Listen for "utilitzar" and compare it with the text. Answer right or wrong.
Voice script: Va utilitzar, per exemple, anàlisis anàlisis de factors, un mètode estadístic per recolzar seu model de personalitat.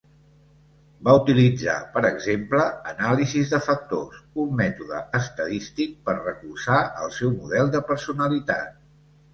right